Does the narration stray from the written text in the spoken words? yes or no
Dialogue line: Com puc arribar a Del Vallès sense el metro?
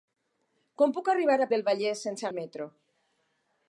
no